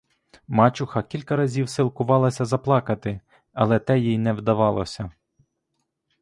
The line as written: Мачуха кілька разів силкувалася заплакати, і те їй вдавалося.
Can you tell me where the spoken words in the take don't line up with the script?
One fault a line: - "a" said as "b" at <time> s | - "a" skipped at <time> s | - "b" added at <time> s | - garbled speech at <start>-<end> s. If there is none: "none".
- "і" said as "але" at 3.5 s
- "не" added at 4.2 s